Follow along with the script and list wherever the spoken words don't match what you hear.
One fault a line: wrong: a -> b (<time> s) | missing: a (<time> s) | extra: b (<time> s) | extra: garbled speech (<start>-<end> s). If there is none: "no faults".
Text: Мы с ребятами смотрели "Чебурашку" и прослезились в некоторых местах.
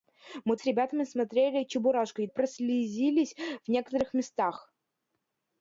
no faults